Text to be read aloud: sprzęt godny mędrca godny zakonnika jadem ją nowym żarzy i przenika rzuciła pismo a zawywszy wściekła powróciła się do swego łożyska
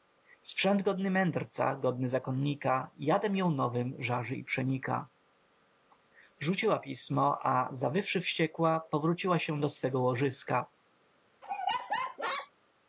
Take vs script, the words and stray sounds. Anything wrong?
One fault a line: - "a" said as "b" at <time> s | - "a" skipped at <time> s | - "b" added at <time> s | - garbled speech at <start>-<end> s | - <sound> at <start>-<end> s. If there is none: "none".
- laugh at 11.4-12.5 s